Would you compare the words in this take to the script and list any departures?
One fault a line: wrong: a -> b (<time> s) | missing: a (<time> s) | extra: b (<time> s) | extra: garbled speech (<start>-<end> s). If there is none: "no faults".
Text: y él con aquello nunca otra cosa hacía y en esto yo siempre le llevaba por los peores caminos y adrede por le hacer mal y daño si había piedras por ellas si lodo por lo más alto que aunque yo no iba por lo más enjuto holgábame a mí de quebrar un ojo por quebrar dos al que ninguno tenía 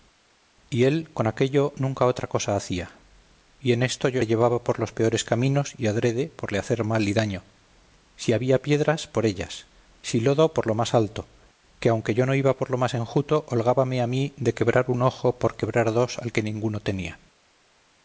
missing: siempre (4.2 s)